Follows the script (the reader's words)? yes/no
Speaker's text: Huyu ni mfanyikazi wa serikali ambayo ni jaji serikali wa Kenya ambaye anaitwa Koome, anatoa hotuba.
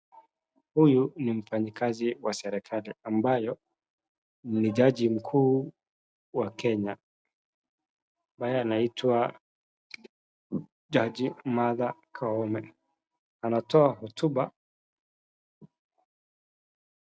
no